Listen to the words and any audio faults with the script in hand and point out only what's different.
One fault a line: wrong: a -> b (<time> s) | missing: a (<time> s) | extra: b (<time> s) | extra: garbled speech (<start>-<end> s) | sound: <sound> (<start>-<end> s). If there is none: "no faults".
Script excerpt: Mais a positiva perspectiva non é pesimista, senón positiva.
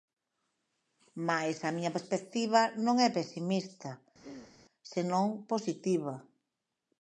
wrong: positiva -> miña (1.8 s)
sound: throat clearing (4.2-4.6 s)